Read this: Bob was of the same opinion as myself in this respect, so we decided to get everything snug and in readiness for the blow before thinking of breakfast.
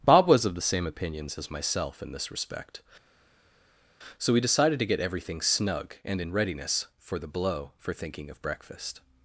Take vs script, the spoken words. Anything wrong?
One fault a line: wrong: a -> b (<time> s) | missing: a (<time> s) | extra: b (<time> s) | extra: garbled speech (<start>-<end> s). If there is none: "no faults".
wrong: opinion -> opinions (0.9 s)
wrong: before -> for (7.8 s)